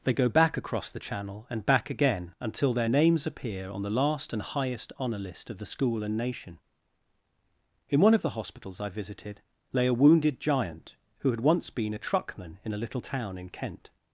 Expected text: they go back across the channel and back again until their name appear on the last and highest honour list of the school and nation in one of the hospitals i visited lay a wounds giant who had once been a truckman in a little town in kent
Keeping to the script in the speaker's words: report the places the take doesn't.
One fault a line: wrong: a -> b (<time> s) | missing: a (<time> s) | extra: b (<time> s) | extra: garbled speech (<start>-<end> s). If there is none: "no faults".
wrong: name -> names (2.9 s)
wrong: wounds -> wounded (9.9 s)